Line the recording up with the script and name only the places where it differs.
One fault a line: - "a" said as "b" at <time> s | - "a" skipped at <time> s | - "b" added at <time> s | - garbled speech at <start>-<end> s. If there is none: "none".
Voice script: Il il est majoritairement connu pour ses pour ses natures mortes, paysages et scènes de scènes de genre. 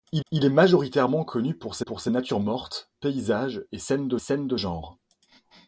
none